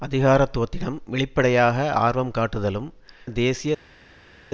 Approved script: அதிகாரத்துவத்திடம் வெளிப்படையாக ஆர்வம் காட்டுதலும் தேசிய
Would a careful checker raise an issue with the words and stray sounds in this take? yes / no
no